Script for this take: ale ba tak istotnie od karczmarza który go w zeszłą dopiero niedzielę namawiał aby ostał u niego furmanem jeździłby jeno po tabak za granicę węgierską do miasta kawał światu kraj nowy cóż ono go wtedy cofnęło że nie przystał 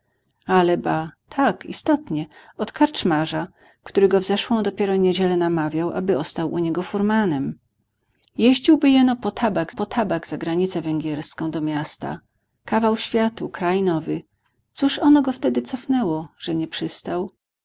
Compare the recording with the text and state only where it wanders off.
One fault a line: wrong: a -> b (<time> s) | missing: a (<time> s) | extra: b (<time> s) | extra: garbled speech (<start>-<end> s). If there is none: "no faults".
extra: po tabak (9.7 s)